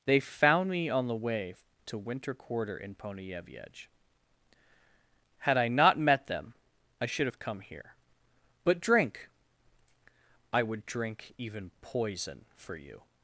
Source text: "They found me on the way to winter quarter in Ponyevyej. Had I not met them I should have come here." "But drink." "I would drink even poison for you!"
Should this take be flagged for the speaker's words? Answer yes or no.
no